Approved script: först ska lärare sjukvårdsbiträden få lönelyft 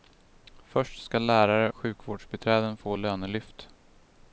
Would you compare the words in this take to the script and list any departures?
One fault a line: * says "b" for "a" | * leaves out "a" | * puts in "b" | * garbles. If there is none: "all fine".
all fine